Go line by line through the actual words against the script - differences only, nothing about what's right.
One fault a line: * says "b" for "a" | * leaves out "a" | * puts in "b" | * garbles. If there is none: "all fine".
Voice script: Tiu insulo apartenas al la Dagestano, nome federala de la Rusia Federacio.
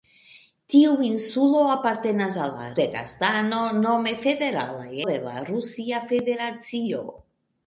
all fine